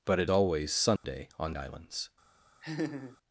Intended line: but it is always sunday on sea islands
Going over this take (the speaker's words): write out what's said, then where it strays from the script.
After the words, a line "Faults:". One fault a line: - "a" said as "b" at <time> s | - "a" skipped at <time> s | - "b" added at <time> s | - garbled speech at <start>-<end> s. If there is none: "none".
but it always sunday on islands
Faults:
- "is" skipped at 0.3 s
- "sea" skipped at 1.6 s